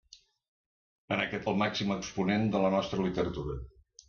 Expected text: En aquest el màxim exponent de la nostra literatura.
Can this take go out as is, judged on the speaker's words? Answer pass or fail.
pass